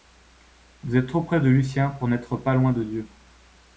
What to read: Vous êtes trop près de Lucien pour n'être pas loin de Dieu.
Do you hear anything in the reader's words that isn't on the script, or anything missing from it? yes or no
no